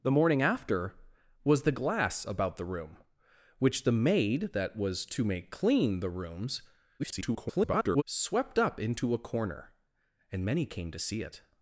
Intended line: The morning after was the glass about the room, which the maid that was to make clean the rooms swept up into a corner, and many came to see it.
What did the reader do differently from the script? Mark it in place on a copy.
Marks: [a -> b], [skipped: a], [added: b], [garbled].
The morning after was the glass about the room, which the maid that was to make clean the rooms [garbled] swept up into a corner, and many came to see it.